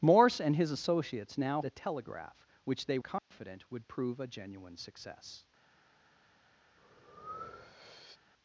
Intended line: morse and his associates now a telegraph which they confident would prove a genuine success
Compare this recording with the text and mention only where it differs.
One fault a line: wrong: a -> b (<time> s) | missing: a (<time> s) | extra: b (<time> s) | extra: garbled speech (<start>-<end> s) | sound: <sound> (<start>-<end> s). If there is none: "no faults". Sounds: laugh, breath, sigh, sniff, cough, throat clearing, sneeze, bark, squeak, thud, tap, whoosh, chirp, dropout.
sound: dropout (3.2-3.3 s)
sound: breath (6.8-8.2 s)